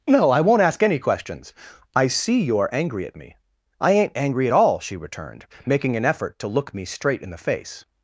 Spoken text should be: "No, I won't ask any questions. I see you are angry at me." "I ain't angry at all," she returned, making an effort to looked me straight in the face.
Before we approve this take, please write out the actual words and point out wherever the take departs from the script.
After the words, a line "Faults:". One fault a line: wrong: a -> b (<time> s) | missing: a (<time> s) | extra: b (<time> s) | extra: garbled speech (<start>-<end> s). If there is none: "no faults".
"No, I won't ask any questions. I see you are angry at me." "I ain't angry at all," she returned, making an effort to look me straight in the face.
Faults:
wrong: looked -> look (6.5 s)